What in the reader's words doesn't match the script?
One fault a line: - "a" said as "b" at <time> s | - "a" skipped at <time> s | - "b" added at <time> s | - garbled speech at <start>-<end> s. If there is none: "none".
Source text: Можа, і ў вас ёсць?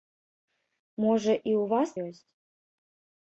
none